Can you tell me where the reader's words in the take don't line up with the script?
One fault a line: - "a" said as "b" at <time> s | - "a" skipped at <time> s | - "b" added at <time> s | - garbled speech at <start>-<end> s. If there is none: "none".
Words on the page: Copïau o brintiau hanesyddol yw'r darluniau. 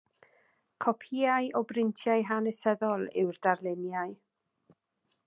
none